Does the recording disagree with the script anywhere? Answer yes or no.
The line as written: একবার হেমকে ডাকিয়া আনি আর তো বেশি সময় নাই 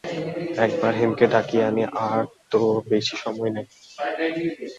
no